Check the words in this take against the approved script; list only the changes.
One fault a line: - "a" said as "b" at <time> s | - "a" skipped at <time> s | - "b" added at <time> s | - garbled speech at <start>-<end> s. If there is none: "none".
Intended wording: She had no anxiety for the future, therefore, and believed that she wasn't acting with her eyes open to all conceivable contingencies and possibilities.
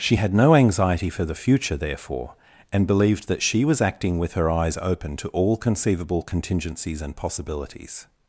- "wasn't" said as "was" at 3.7 s